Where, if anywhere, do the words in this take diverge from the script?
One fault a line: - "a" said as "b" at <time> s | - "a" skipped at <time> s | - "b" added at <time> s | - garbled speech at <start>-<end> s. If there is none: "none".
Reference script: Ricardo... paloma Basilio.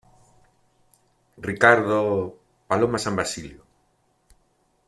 - "San" added at 3.0 s